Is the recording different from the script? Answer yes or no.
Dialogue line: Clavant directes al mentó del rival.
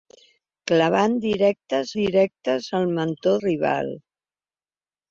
yes